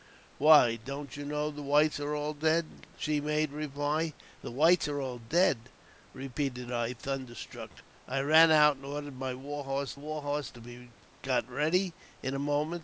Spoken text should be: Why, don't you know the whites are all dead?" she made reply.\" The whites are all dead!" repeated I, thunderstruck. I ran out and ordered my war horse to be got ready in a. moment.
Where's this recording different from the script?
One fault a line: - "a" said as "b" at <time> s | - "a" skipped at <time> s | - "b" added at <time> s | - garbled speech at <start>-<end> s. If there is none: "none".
- "war horse" added at 9.9 s